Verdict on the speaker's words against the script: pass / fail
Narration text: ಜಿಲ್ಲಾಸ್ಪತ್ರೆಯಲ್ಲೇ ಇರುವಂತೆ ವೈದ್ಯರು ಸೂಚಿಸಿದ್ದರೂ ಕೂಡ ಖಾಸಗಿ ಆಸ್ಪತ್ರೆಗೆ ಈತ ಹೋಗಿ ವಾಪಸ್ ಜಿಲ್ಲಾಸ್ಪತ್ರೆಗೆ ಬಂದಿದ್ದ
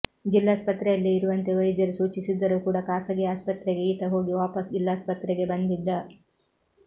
pass